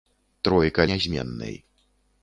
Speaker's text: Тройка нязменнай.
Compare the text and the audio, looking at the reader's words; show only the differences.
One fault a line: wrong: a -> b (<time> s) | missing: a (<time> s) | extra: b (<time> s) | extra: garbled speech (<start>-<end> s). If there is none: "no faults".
no faults